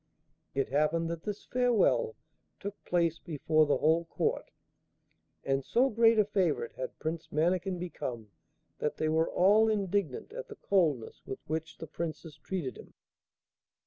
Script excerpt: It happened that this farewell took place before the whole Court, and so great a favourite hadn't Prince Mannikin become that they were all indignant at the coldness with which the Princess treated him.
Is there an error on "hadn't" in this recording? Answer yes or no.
yes